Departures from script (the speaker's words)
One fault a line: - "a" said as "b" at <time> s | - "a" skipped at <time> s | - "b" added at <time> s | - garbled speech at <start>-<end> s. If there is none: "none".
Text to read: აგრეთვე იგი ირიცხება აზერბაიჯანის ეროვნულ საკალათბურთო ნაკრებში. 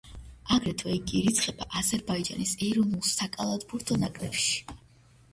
none